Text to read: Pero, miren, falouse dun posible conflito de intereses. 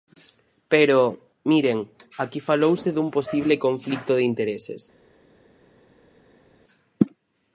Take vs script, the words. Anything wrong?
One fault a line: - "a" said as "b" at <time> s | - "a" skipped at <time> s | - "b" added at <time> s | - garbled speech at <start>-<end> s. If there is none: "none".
- "aquí" added at 2.2 s